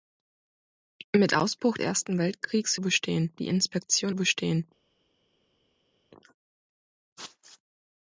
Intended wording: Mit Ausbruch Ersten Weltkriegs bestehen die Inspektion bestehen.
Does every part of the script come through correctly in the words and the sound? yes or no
yes